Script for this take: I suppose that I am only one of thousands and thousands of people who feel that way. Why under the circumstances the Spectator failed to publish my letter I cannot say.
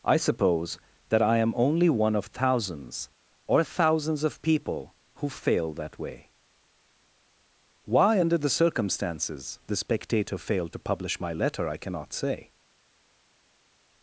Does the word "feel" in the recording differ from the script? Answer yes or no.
yes